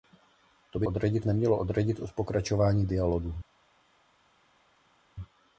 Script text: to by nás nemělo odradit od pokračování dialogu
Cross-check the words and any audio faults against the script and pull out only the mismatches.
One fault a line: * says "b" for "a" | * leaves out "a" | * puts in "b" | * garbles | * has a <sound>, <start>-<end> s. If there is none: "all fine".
* says "odradit" for "nás"